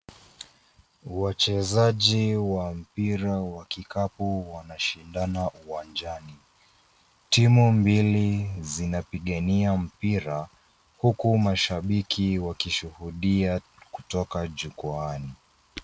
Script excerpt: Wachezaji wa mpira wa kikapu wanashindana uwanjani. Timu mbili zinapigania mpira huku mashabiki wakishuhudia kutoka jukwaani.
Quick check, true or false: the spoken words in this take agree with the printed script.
true